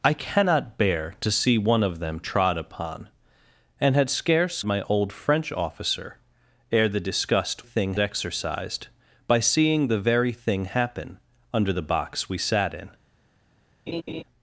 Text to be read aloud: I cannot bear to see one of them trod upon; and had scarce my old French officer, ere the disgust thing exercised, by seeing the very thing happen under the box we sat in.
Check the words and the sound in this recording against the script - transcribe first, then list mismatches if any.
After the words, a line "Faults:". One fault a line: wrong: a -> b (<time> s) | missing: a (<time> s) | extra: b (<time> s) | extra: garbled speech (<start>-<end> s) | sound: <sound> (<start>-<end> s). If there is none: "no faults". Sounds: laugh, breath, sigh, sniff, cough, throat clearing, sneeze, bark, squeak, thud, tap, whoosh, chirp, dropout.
I cannot bear to see one of them trod upon; and had scarce my old French officer, ere the disgust thing exercised, by seeing the very thing happen under the box we sat in.
Faults:
sound: laugh (13.9-14.2 s)